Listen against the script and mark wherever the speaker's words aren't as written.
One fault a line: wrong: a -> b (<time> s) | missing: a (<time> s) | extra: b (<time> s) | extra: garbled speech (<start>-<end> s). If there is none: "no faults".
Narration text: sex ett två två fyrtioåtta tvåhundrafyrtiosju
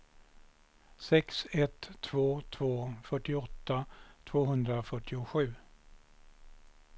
no faults